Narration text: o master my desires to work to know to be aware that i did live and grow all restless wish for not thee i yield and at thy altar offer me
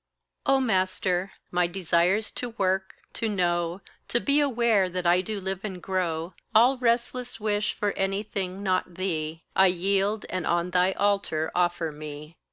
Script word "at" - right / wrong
wrong